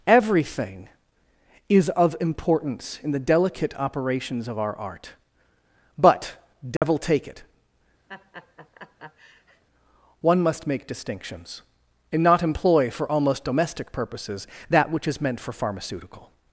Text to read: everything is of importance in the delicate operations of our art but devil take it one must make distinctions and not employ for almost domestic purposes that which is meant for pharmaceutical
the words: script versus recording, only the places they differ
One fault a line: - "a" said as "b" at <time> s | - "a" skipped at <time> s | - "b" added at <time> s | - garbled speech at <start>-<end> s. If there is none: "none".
none